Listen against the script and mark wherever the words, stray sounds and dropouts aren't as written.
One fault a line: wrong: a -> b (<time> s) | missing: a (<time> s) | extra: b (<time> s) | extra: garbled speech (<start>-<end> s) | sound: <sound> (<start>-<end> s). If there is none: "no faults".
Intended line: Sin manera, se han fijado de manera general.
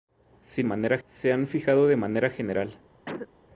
sound: cough (3.1-3.3 s)